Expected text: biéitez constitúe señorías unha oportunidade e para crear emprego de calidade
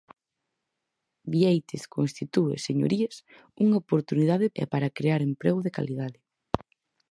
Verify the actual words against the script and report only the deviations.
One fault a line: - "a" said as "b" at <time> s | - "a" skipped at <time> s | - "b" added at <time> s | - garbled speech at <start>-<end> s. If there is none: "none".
none